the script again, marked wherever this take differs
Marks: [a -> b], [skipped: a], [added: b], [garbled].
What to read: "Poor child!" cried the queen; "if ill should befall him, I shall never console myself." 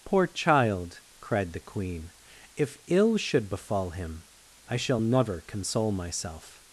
"Poor child!" cried the queen; "if ill should befall him, I shall never console myself."